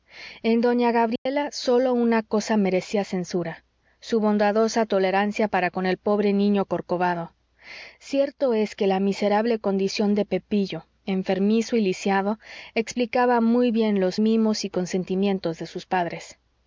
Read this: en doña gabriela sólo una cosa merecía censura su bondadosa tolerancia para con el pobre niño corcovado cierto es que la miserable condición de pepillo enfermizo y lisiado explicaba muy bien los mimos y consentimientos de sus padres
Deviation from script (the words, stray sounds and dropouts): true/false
true